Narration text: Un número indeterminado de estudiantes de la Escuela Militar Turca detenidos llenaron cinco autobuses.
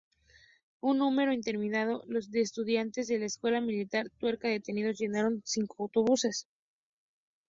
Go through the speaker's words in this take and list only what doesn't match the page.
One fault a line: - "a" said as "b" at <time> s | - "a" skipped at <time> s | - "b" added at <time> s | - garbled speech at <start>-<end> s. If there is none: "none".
none